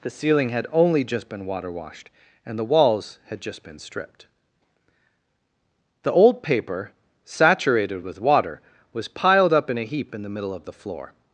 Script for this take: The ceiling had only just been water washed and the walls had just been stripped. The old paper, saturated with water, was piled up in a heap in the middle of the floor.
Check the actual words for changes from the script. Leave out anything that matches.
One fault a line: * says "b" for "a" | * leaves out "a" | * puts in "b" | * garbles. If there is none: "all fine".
all fine